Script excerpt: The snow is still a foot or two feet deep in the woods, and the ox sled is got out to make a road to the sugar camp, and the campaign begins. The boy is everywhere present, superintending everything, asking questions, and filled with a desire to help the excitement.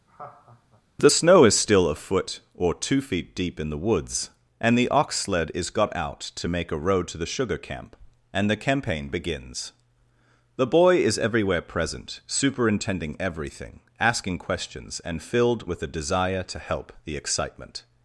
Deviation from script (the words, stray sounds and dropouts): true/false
true